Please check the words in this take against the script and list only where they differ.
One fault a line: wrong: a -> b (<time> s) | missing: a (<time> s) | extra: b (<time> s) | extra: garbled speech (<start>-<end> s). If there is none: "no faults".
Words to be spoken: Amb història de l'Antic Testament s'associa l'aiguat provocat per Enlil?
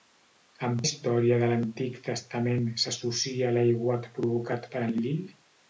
no faults